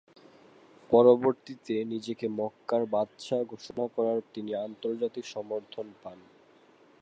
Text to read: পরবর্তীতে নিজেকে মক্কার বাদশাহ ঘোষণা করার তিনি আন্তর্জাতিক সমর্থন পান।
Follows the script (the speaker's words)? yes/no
yes